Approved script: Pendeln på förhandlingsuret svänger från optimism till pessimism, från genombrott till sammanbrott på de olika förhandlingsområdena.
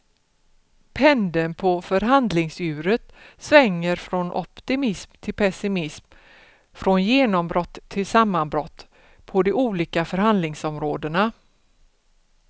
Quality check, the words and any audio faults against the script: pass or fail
pass